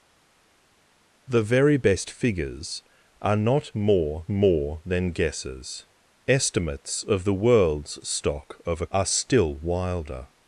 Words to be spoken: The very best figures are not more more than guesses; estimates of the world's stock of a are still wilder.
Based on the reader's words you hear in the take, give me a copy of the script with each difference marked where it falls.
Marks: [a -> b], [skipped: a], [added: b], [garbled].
The very best figures are not more more than guesses; estimates of the world's stock of a are still wilder.